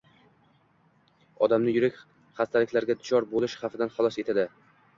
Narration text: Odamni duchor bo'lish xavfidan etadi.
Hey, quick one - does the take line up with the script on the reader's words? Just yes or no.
no